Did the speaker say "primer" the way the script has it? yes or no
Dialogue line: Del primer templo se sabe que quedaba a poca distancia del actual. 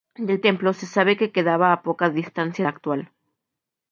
no